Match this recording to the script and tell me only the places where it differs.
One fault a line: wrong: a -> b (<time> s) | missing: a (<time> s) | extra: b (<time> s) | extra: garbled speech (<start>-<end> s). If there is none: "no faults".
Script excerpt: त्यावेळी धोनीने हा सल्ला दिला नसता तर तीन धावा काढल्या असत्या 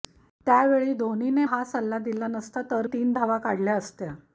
no faults